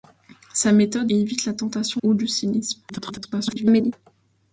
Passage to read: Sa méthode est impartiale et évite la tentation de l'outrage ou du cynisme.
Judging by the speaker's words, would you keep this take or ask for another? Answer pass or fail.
fail